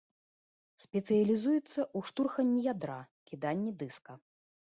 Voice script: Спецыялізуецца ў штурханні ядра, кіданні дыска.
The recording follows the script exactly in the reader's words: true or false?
true